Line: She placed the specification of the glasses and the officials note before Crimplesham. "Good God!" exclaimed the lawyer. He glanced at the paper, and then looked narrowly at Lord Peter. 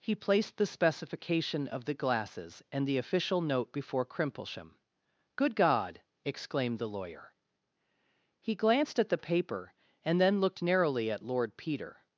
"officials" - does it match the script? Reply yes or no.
no